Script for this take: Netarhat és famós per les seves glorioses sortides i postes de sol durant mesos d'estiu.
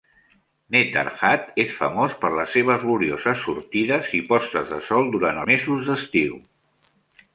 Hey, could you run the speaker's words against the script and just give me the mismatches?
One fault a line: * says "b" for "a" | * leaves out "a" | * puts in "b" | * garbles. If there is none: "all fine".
all fine